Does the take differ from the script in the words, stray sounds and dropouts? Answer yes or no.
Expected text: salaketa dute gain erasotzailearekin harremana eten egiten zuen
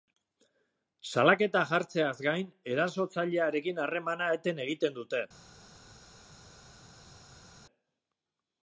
yes